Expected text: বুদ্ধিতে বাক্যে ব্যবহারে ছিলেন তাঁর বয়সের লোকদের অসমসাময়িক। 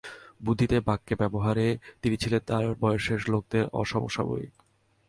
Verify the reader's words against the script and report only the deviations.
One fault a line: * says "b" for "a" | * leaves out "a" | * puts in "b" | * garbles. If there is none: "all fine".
* puts in "তিনি"